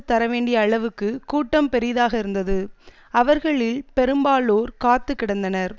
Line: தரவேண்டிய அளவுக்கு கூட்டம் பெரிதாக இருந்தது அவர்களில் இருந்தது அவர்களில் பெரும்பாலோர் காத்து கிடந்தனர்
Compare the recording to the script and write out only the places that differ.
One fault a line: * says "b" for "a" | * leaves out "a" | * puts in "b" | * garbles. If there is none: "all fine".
* leaves out "இருந்தது அவர்களில்"